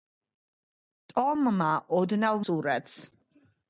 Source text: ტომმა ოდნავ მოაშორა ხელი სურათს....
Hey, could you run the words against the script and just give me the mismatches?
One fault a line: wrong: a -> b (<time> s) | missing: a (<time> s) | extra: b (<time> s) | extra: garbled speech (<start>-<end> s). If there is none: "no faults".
missing: მოაშორა ხელი (2.4 s)